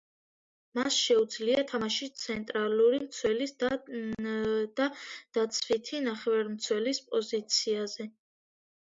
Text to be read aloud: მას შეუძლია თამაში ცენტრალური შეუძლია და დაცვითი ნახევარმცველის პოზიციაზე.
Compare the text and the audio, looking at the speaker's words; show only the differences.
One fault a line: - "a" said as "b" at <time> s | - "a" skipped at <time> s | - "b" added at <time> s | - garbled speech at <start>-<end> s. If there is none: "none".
- "შეუძლია" said as "მცველის" at 3.1 s